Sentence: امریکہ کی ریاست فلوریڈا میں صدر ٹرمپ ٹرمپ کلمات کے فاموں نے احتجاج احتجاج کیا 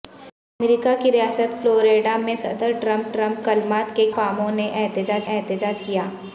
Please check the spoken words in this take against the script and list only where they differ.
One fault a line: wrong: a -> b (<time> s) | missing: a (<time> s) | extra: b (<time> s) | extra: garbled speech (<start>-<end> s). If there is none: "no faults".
no faults